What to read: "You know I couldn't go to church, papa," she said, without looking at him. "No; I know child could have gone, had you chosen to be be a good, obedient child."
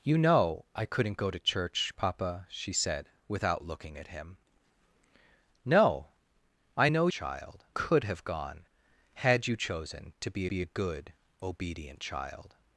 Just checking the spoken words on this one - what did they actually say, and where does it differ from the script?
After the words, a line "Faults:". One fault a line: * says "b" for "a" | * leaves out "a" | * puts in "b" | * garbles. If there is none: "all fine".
"You know I couldn't go to church, papa," she said, without looking at him. "No; I know child could have gone, had you chosen to be be a good, obedient child."
Faults:
all fine